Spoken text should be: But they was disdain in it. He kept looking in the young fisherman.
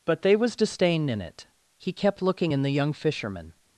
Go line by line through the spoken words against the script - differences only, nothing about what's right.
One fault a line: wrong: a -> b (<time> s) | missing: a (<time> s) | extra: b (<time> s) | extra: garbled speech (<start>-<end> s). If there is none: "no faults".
no faults